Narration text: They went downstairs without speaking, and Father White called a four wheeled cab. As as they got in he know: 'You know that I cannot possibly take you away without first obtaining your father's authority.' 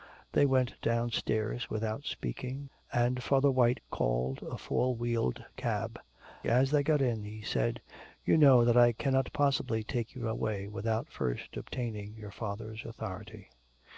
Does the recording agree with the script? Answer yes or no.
no